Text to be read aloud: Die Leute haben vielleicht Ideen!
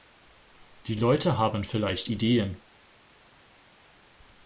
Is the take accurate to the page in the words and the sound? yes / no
yes